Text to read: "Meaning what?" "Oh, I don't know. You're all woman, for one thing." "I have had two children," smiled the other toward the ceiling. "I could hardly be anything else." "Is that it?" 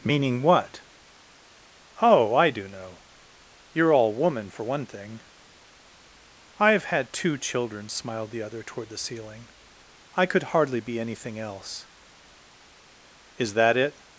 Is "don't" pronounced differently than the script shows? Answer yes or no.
yes